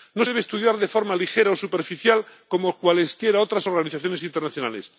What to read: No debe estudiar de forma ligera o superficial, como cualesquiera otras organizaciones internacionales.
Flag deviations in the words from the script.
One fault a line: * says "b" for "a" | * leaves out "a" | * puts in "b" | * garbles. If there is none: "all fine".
all fine